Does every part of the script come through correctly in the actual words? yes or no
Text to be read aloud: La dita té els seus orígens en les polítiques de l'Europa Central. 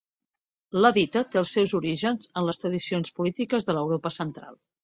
no